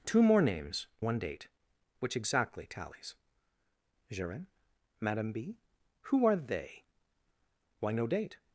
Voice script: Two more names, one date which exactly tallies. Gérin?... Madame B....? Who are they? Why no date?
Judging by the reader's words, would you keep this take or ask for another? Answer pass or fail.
pass